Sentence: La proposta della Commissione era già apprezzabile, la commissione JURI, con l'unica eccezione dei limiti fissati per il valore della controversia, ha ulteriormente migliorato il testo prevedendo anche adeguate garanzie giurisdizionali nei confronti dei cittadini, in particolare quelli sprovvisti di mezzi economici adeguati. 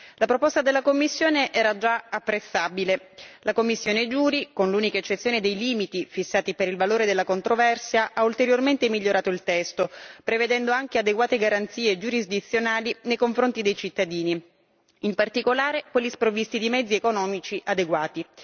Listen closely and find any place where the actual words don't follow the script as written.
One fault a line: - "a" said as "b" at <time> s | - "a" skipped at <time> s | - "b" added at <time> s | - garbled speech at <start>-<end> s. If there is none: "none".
none